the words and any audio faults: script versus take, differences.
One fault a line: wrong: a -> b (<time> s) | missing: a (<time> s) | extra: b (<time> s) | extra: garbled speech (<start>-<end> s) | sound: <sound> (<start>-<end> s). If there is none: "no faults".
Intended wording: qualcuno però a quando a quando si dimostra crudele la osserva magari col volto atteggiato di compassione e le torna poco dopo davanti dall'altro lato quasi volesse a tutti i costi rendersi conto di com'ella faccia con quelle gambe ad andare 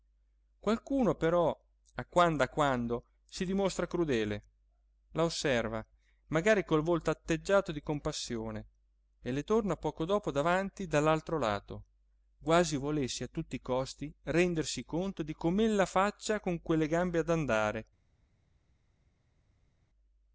no faults